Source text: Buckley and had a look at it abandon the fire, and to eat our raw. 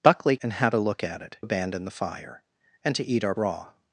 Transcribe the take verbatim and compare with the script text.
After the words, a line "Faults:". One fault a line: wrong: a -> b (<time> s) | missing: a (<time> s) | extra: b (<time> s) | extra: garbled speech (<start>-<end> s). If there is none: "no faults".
Buckley and had a look at it abandon the fire, and to eat our raw.
Faults:
no faults